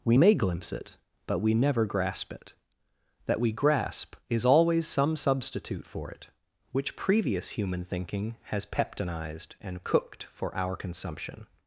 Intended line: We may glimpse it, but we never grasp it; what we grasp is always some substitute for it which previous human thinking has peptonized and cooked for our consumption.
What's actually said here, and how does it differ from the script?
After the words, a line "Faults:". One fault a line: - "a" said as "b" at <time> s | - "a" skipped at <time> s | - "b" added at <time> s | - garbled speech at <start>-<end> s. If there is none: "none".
We may glimpse it, but we never grasp it; that we grasp is always some substitute for it which previous human thinking has peptonized and cooked for our consumption.
Faults:
- "what" said as "that" at 3.3 s